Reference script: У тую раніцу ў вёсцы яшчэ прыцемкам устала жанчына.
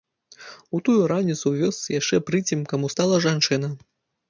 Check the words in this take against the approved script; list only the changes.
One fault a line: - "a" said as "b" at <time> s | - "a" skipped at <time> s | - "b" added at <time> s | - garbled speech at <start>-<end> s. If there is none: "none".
none